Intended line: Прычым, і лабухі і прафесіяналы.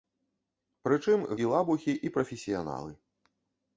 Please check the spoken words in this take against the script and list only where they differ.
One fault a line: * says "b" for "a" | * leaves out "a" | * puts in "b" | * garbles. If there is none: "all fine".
all fine